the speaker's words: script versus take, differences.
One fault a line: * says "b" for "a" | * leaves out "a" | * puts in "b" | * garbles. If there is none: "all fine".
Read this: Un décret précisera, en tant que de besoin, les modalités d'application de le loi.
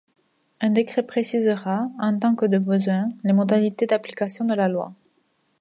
* says "la" for "le"